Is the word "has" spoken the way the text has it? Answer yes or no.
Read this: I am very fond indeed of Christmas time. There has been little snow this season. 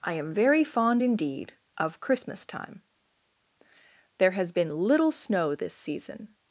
yes